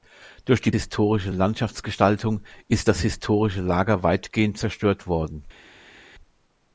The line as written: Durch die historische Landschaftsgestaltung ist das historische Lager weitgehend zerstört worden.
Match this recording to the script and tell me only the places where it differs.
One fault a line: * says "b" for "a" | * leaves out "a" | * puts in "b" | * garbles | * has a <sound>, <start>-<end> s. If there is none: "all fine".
all fine